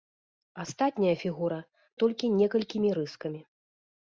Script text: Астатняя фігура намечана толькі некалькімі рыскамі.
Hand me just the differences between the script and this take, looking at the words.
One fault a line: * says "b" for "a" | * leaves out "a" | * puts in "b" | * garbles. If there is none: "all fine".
* leaves out "намечана"